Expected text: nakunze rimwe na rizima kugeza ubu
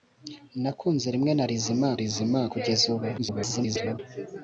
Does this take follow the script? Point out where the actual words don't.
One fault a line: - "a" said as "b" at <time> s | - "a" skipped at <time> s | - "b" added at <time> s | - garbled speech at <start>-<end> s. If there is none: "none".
- "rizima" added at 2.0 s
- garbled speech at 3.2-4.0 s